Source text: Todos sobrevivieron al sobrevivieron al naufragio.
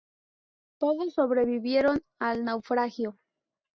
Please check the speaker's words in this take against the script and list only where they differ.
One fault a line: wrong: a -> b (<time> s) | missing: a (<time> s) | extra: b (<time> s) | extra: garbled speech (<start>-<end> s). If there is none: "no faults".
missing: sobrevivieron al (2.4 s)